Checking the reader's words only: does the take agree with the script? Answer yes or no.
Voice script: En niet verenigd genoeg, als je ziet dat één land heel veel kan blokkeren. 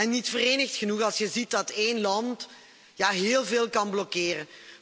yes